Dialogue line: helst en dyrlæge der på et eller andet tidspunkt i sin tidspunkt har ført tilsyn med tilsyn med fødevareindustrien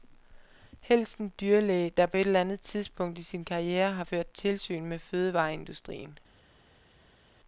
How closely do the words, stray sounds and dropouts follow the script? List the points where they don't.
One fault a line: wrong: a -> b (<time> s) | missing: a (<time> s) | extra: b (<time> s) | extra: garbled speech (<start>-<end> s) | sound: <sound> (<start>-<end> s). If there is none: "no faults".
wrong: tidspunkt -> karriere (3.4 s)
missing: tilsyn med (5.0 s)